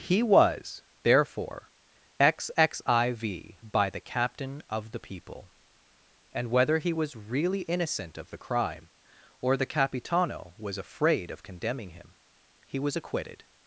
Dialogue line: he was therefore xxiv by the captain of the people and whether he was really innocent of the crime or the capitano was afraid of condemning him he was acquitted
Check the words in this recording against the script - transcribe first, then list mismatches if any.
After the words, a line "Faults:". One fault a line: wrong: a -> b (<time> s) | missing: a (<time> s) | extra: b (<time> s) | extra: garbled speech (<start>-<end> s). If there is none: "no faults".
he was therefore xxiv by the captain of the people and whether he was really innocent of the crime or the capitano was afraid of condemning him he was acquitted
Faults:
no faults